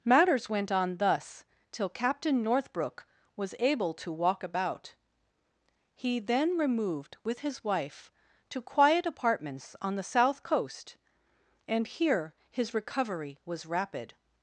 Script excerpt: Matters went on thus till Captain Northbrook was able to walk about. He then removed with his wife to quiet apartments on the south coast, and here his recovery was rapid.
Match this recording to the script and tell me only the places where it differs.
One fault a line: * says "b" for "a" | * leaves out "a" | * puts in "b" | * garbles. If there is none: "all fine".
all fine